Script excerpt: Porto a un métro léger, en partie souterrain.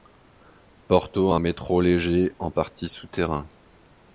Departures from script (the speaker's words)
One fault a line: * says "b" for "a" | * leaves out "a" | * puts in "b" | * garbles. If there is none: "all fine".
all fine